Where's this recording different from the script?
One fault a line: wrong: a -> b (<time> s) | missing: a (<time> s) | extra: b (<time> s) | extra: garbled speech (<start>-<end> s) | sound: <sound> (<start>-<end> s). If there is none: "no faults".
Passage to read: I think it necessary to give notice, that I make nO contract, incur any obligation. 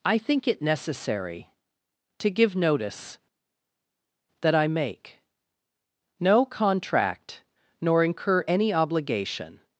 extra: nor (7.8 s)